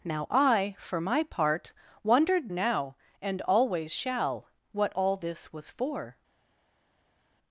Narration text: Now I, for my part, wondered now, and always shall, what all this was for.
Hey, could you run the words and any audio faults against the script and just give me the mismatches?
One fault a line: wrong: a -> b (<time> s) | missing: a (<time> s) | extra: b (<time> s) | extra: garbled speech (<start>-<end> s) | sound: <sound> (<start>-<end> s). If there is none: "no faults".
no faults